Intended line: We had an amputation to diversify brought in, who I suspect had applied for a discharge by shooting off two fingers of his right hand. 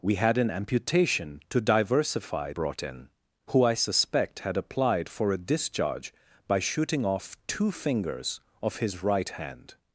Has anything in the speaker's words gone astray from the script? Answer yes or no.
no